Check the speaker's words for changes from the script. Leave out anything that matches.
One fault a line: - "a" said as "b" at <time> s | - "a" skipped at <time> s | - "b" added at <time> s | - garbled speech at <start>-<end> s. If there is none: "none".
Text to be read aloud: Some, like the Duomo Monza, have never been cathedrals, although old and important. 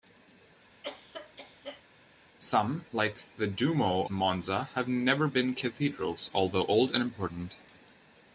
none